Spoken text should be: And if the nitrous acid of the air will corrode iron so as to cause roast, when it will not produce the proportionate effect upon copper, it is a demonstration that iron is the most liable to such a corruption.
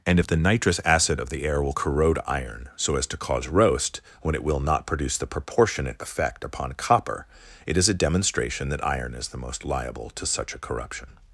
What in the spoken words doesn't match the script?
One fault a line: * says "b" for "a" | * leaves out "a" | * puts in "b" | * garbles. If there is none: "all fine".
all fine